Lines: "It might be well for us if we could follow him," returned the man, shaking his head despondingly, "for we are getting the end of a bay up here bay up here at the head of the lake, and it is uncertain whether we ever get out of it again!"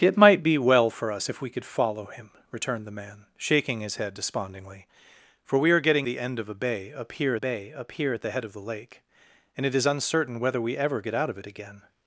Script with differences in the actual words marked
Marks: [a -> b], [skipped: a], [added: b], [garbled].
"It might be well for us if we could follow him," returned the man, shaking his head despondingly, "for we are getting the end of a bay up here bay up here at the head of the lake, and it is uncertain whether we ever get out of it again!"